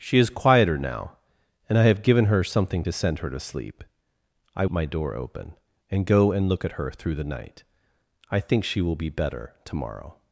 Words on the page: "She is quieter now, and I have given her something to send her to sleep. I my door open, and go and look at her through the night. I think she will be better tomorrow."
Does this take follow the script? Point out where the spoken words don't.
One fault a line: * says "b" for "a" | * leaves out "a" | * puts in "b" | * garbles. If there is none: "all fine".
all fine